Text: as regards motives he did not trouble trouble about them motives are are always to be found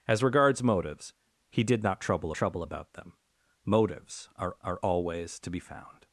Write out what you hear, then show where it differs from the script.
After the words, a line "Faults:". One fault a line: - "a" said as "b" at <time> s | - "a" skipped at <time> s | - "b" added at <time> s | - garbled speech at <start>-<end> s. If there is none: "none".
as regards motives he did not trouble trouble about them motives are are always to be found
Faults:
none